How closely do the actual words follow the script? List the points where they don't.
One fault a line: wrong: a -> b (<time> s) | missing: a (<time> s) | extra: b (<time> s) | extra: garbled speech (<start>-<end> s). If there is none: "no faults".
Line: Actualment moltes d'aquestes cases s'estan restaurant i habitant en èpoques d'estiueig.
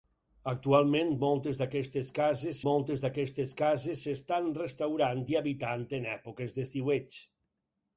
extra: moltes d'aquestes cases (2.7 s)